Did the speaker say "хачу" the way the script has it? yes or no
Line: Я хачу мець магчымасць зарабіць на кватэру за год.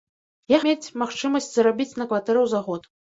no